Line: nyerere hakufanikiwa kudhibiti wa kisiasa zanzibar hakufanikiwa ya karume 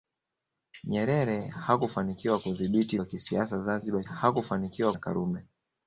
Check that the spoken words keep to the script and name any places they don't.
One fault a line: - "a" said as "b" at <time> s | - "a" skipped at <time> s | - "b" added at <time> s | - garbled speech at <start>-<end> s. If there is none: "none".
none